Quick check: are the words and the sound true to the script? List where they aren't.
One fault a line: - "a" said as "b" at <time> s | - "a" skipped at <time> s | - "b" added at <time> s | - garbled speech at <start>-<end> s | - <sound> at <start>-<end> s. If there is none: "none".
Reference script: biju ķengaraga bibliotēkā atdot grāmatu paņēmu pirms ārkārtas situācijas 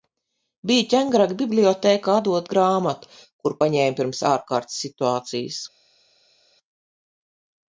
- "kuru" added at 3.4 s